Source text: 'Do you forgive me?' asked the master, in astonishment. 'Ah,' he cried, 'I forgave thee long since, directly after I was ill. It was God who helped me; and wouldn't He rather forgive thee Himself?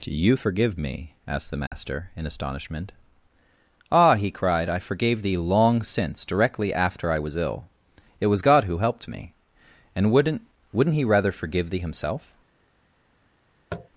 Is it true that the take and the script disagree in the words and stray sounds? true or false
true